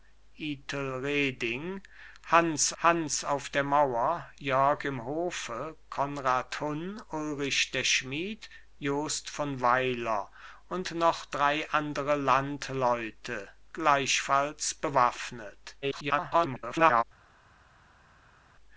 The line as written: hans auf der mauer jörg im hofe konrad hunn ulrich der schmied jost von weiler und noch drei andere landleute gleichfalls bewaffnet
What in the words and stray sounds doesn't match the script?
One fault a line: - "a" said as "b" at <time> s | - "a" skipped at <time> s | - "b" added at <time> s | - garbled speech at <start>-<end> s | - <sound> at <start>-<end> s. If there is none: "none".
- "hans" added at 2.8 s
- garbled speech at 15.8-17.0 s